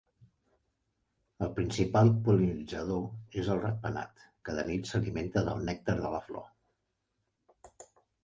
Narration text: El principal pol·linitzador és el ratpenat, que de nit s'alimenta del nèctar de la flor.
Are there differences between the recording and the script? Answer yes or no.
no